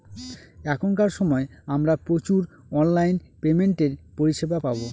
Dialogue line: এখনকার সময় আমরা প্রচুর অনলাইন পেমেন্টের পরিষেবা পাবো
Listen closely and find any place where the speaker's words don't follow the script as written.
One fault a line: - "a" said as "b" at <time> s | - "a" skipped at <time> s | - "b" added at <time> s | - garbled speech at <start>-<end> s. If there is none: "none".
none